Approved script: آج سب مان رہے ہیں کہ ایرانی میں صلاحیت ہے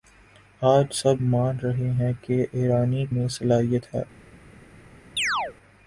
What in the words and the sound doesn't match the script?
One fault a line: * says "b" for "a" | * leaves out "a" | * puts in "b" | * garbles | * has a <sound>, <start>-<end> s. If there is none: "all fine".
* has a chirp, 5.2-5.5 s